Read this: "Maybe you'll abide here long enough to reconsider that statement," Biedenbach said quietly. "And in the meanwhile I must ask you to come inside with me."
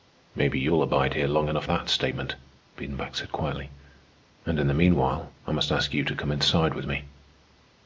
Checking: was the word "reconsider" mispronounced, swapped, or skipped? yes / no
yes